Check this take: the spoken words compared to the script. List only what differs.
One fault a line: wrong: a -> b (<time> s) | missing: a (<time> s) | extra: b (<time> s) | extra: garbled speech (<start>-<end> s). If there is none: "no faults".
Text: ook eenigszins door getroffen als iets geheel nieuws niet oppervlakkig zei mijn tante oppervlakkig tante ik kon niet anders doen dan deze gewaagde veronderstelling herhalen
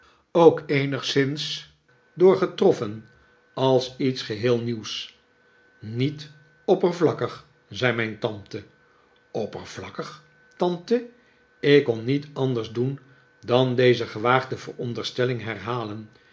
no faults